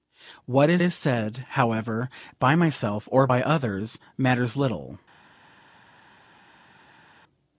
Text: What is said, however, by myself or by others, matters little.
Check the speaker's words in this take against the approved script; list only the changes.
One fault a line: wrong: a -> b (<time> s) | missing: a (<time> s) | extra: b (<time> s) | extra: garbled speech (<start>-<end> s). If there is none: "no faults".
extra: is (0.8 s)